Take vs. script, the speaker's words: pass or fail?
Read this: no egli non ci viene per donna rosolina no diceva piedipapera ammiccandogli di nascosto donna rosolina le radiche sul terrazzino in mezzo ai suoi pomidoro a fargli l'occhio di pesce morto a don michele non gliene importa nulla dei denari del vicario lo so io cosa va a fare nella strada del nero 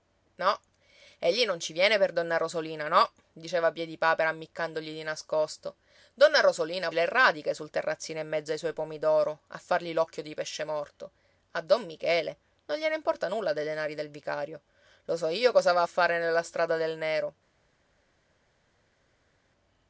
pass